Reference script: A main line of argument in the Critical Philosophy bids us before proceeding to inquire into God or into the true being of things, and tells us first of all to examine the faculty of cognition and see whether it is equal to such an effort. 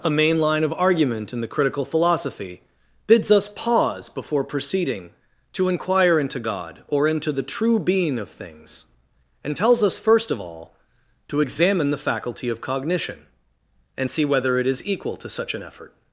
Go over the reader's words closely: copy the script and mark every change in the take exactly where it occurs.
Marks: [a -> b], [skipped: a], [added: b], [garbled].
A main line of argument in the Critical Philosophy bids us [added: pause] before proceeding to inquire into God or into the true being of things, and tells us first of all to examine the faculty of cognition and see whether it is equal to such an effort.